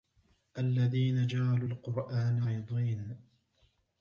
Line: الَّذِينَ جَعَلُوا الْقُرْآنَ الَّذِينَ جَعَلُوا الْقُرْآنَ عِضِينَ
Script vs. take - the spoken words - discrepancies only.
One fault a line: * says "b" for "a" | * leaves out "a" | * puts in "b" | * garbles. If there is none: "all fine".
* leaves out "الَّذِينَ جَعَلُوا الْقُرْآنَ"